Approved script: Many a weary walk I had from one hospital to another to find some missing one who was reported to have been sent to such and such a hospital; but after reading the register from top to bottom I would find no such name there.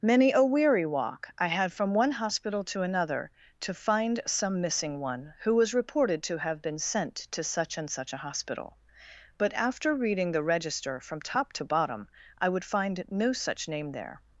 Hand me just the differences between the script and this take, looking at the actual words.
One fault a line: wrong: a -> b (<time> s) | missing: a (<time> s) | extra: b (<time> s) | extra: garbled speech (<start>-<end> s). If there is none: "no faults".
no faults